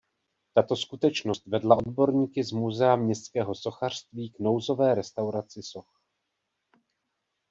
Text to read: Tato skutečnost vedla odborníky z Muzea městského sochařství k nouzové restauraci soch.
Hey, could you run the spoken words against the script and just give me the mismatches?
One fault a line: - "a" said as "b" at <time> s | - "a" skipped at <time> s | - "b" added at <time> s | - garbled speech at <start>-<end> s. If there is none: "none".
none